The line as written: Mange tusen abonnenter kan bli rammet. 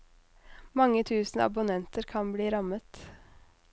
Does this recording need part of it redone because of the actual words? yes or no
no